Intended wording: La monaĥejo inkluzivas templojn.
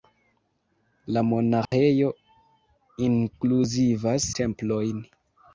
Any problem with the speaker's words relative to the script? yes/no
no